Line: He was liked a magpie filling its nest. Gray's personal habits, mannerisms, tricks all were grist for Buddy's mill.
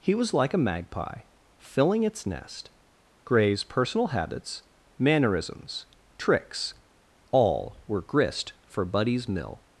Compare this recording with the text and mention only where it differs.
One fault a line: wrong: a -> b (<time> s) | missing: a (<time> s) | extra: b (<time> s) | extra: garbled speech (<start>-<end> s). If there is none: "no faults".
wrong: liked -> like (0.3 s)